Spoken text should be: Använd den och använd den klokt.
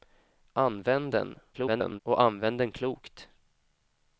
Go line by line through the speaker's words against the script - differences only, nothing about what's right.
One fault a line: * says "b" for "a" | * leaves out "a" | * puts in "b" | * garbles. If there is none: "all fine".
* garbles